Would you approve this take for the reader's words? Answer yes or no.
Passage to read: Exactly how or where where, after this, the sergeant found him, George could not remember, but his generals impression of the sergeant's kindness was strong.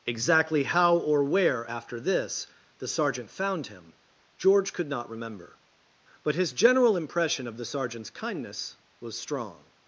no